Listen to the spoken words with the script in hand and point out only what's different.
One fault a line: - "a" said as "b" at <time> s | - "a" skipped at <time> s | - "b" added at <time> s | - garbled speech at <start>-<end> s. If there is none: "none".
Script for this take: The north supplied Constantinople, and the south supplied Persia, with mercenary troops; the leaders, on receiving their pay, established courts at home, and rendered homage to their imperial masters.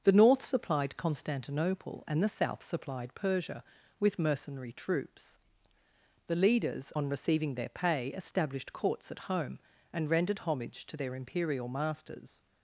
none